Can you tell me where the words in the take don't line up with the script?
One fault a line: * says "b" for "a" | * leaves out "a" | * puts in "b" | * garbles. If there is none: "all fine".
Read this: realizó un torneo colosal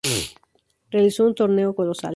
all fine